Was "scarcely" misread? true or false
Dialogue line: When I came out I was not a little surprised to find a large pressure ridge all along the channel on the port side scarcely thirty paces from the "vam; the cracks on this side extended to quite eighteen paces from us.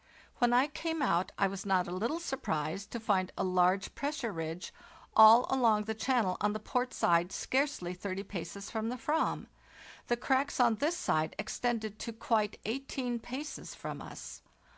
false